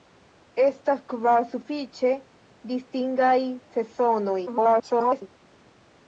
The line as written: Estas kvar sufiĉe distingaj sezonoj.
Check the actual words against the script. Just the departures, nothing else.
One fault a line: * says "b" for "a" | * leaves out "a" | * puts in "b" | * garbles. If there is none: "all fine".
* garbles